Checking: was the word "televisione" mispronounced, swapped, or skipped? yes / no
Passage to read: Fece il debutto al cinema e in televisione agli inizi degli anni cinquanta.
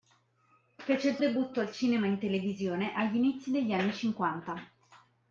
no